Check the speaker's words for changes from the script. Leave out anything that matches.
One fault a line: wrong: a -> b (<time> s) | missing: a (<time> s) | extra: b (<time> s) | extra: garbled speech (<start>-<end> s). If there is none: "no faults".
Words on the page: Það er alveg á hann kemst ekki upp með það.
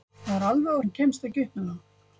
no faults